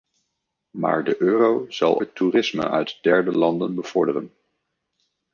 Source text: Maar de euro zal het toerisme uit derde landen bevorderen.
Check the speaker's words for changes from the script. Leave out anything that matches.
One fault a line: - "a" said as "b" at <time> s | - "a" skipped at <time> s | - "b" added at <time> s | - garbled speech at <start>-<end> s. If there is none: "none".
none